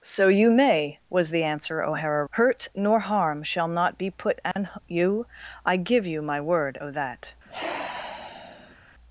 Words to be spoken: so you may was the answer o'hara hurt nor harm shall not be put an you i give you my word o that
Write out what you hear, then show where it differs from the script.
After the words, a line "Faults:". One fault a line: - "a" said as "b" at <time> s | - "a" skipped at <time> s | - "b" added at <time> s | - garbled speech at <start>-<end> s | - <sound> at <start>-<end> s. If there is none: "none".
so you may was the answer o'hara hurt nor harm shall not be put an you i give you my word o that
Faults:
- dropout at 4.5-4.6 s
- sigh at 7.5-8.8 s